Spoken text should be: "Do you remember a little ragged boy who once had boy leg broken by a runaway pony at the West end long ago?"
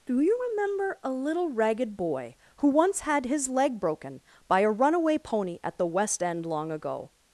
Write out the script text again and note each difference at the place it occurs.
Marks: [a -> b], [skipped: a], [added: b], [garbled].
"Do you remember a little ragged boy who once had [boy -> his] leg broken by a runaway pony at the West end long ago?"